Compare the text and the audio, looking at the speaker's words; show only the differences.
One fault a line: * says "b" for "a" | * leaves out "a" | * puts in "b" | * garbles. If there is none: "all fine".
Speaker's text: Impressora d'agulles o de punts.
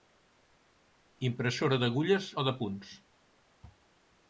all fine